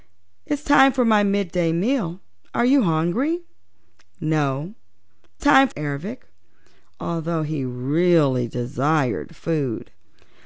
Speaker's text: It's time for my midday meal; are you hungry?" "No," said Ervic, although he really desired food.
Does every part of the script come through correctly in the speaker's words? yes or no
no